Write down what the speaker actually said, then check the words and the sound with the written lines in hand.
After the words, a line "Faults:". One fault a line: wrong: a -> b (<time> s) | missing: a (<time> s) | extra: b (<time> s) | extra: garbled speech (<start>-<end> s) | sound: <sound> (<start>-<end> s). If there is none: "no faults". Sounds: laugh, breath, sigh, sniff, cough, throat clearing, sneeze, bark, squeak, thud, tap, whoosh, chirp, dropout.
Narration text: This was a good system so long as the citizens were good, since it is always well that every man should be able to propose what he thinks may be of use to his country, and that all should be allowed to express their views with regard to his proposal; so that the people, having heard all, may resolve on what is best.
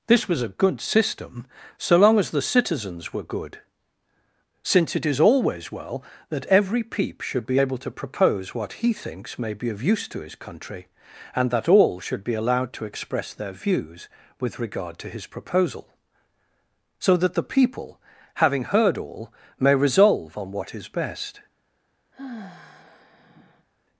This was a good system so long as the citizens were good, since it is always well that every peep should be able to propose what he thinks may be of use to his country, and that all should be allowed to express their views with regard to his proposal; so that the people, having heard all, may resolve on what is best.
Faults:
wrong: man -> peep (6.8 s)
sound: sigh (22.1-23.7 s)